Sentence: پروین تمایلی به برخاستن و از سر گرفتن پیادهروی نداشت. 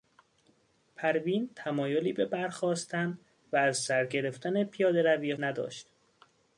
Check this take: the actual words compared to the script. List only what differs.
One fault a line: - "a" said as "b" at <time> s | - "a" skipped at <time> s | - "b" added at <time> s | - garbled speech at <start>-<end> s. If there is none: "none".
none